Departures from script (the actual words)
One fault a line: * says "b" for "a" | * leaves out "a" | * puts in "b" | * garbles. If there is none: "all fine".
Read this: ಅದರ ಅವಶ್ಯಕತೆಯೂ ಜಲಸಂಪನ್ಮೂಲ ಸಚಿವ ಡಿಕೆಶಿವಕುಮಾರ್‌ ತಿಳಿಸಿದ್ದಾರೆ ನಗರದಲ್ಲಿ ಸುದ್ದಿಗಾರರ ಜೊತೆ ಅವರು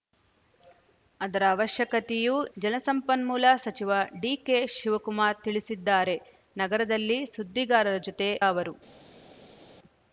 all fine